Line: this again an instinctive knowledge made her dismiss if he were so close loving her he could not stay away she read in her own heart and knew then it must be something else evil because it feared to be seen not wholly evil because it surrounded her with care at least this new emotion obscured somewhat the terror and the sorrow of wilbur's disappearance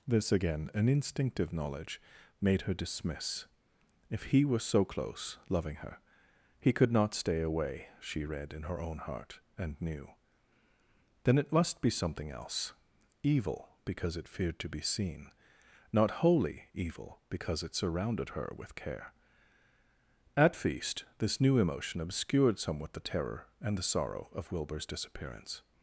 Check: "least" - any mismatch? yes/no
yes